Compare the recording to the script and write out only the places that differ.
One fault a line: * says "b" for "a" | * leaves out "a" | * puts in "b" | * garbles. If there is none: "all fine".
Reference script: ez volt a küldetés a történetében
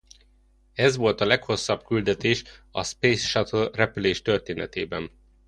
* puts in "leghosszabb"
* puts in "space shuttle repülés"